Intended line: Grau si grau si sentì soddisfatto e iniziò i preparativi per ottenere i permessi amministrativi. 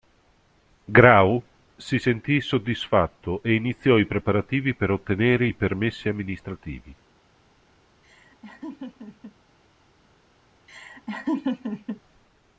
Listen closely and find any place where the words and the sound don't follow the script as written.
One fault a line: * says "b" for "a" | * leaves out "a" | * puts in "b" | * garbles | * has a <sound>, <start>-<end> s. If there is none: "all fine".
* leaves out "grau si"
* has a laugh, 8.0-9.4 s
* has a laugh, 10.7-12.0 s